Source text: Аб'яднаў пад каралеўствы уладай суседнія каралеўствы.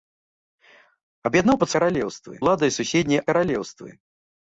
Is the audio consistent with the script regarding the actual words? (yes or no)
yes